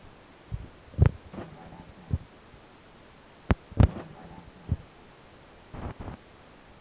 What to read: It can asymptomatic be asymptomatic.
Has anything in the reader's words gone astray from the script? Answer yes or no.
no